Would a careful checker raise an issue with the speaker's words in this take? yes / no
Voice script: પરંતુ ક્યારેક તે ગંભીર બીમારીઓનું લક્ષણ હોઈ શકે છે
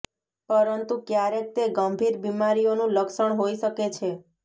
no